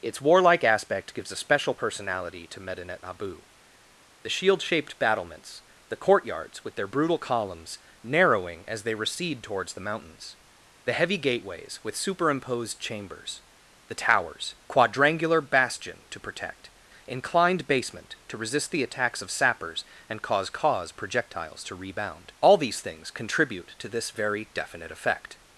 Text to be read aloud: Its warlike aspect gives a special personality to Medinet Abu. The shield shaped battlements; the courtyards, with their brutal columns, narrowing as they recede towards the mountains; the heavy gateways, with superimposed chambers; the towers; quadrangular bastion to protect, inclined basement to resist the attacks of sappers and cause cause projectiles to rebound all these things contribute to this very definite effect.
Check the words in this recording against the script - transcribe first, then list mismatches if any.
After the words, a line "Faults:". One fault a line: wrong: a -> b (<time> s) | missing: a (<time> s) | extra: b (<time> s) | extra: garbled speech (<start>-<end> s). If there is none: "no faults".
Its warlike aspect gives a special personality to Medinet Abu. The shield shaped battlements; the courtyards, with their brutal columns, narrowing as they recede towards the mountains; the heavy gateways, with superimposed chambers; the towers; quadrangular bastion to protect, inclined basement to resist the attacks of sappers and cause cause projectiles to rebound all these things contribute to this very definite effect.
Faults:
no faults